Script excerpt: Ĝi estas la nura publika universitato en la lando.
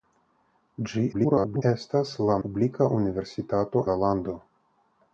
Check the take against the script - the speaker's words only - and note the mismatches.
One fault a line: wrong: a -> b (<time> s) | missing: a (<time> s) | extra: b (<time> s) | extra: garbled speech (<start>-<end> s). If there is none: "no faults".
extra: garbled speech (1.1-1.6 s)
missing: nura (2.4 s)
missing: en (3.8 s)